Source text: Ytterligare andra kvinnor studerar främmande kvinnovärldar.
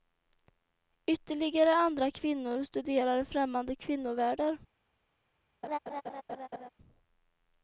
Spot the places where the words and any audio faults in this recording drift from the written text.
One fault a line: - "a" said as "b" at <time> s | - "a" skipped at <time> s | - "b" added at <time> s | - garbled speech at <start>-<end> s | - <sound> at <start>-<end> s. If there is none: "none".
- laugh at 5.6-6.7 s